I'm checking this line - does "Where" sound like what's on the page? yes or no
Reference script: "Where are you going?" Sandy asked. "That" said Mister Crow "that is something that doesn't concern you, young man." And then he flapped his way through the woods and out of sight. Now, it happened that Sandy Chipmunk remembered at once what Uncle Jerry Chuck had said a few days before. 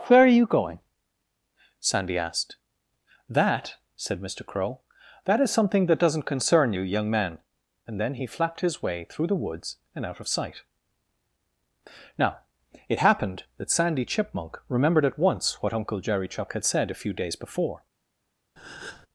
yes